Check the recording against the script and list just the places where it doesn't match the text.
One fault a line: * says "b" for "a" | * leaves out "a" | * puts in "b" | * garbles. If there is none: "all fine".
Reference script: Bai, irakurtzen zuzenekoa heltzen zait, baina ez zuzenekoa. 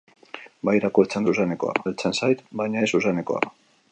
all fine